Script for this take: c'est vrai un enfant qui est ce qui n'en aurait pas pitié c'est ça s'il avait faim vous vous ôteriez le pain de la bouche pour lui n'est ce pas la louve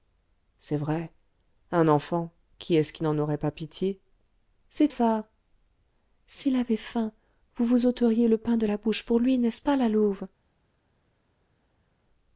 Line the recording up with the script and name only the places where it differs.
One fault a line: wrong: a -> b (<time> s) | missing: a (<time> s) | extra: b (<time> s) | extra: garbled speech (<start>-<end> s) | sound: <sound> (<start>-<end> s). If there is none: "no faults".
no faults